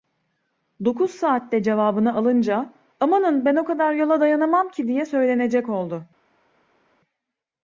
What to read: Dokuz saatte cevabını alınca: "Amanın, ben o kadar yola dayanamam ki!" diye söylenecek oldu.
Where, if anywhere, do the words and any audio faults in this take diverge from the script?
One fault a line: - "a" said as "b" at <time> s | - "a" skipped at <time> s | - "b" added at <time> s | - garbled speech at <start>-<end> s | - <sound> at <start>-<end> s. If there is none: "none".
none